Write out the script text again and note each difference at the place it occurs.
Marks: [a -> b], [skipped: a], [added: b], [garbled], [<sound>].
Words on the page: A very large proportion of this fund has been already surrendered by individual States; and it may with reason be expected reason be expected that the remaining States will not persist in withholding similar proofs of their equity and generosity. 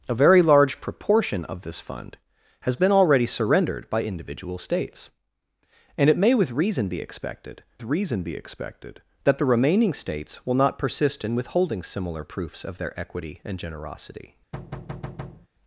A very large proportion of this fund has been already surrendered by individual States; and it may with reason be expected reason be expected that the remaining States will not persist in withholding similar proofs of their equity and generosity. [thud]